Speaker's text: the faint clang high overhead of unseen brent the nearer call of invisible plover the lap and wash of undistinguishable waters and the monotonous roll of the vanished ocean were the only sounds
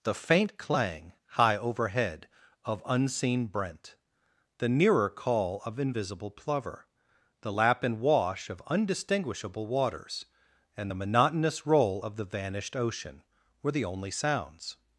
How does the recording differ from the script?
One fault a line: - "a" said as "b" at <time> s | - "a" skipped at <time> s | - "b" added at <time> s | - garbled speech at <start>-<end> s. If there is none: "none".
none